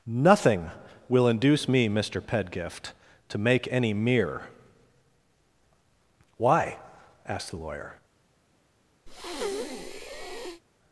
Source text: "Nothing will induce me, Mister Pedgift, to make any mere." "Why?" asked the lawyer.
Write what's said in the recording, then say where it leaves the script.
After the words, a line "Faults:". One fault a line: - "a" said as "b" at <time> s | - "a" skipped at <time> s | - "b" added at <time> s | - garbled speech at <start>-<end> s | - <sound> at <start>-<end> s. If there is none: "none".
"Nothing will induce me, Mister Pedgift, to make any mere." "Why?" asked the lawyer.
Faults:
- breath at 9.1-10.6 s